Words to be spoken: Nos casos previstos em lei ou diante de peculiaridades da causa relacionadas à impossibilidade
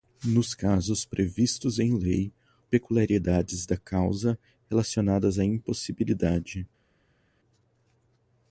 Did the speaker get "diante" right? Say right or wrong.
wrong